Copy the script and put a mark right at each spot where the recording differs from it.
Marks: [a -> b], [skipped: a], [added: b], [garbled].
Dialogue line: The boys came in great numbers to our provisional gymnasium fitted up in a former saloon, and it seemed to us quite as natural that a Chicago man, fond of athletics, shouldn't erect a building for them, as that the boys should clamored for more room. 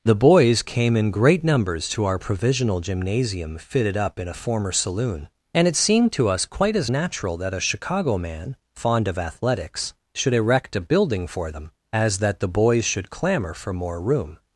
The boys came in great numbers to our provisional gymnasium fitted up in a former saloon, and it seemed to us quite as natural that a Chicago man, fond of athletics, [shouldn't -> should] erect a building for them, as that the boys should [clamored -> clamor] for more room.